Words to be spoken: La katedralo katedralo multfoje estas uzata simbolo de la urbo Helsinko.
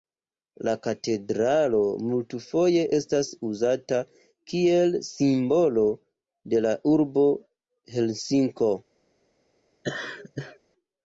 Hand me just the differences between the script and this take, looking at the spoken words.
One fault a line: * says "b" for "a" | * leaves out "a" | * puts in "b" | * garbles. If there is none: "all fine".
* leaves out "katedralo"
* puts in "kiel"